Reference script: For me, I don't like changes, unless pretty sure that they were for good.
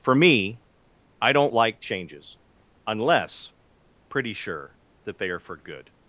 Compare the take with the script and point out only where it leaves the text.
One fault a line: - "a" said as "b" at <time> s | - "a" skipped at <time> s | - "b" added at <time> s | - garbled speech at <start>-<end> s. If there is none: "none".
- "were" said as "are" at 5.3 s